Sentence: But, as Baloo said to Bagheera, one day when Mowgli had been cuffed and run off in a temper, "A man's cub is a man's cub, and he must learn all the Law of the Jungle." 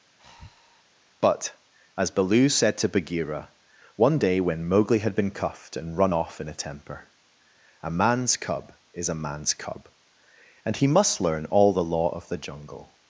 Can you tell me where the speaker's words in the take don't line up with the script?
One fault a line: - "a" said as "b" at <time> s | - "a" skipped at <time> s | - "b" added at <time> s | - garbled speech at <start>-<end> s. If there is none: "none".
none